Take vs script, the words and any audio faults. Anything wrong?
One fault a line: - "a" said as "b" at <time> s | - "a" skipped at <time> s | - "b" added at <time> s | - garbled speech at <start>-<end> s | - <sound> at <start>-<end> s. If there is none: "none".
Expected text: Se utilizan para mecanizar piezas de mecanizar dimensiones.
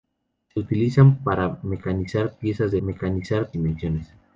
none